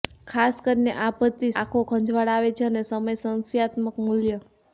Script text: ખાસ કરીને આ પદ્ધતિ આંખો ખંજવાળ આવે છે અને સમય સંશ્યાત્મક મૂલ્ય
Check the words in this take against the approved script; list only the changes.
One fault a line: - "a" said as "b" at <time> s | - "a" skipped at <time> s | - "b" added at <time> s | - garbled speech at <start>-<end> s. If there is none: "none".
none